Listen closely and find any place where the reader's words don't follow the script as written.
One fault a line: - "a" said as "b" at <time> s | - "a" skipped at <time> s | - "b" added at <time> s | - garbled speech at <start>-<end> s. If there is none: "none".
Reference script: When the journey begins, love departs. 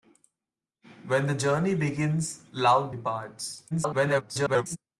- garbled speech at 3.7-4.8 s